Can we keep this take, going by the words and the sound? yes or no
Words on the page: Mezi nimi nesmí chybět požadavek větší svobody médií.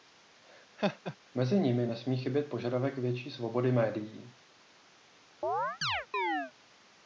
no